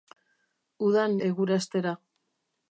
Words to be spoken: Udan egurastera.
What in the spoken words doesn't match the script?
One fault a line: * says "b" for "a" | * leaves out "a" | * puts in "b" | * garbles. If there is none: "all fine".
all fine